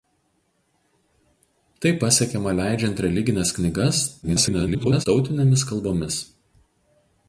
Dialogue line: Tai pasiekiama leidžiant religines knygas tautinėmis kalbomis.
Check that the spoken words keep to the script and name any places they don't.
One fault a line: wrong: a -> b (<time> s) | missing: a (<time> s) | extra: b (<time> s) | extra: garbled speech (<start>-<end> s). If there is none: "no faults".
extra: garbled speech (4.2-5.1 s)